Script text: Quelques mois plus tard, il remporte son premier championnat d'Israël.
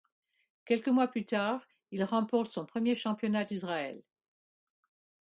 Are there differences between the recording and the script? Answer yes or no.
no